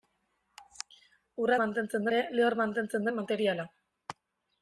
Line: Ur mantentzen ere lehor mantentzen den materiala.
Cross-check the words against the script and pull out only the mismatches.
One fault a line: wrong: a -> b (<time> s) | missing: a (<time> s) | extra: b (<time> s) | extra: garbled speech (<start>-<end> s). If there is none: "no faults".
no faults